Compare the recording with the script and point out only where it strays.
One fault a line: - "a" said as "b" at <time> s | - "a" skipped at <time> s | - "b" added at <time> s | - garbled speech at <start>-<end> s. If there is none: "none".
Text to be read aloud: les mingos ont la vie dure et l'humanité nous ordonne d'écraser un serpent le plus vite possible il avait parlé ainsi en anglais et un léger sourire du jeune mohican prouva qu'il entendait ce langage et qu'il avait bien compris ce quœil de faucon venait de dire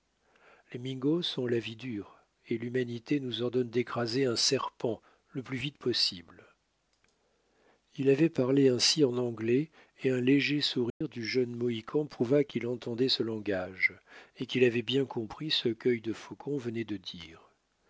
none